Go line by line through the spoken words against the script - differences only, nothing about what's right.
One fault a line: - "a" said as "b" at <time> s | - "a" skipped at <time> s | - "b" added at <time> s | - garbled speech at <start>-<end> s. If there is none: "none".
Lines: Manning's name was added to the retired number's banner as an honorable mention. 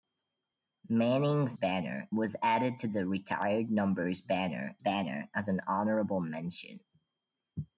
- "name" said as "banner" at 1.5 s
- "banner" added at 4.8 s